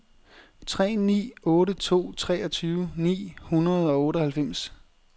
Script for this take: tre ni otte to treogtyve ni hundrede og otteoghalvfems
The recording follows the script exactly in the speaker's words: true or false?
true